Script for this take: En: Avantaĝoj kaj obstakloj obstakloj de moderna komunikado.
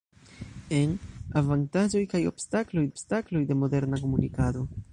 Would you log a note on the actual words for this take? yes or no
no